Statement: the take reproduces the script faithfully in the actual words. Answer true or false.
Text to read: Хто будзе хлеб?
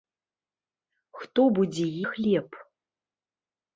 true